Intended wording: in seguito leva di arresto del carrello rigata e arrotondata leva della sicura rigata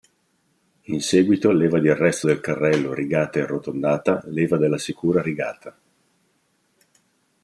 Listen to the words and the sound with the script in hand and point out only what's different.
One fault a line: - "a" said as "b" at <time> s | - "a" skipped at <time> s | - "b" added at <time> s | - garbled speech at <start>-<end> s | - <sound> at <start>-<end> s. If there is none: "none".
none